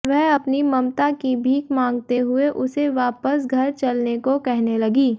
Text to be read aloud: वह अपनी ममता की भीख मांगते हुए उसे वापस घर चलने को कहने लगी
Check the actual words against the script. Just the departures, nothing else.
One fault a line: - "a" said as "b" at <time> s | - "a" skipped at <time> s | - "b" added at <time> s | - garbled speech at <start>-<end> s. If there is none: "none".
none